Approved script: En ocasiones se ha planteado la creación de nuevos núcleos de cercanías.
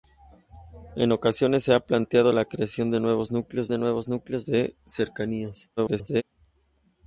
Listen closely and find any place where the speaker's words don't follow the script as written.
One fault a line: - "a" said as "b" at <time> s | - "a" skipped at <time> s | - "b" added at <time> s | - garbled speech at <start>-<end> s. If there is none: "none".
- "nuevos núcleos de" added at 3.8 s
- garbled speech at 5.8-6.2 s